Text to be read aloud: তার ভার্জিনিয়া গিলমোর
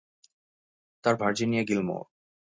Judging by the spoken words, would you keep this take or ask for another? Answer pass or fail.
pass